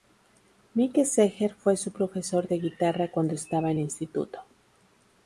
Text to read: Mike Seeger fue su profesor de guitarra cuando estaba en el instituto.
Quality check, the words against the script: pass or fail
fail